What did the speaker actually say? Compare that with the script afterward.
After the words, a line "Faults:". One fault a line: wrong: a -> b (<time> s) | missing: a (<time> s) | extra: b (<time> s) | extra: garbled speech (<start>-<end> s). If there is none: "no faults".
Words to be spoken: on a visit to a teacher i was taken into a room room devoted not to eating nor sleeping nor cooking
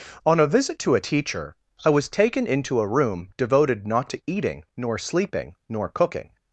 on a visit to a teacher i was taken into a room devoted not to eating nor sleeping nor cooking
Faults:
missing: room (3.3 s)